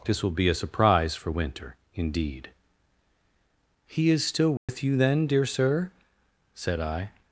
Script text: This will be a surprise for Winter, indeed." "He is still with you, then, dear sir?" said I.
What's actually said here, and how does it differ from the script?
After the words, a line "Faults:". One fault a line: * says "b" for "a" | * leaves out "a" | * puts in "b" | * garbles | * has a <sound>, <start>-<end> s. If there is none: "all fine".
This will be a surprise for Winter, indeed." "He is still with you, then, dear sir?" said I.
Faults:
* has a dropout, 4.6-4.7 s